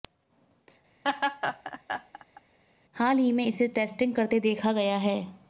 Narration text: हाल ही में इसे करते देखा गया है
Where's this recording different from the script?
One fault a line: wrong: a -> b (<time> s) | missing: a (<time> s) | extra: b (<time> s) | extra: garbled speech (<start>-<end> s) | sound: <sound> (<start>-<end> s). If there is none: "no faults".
sound: laugh (1.0-2.4 s)
extra: टेस्टिंग (3.7 s)